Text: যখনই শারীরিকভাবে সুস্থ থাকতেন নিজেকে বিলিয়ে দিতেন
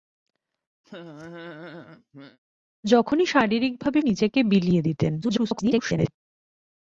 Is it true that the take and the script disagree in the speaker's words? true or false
true